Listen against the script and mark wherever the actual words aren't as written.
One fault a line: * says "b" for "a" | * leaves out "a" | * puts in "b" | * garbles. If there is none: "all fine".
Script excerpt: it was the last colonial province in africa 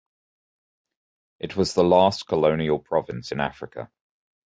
all fine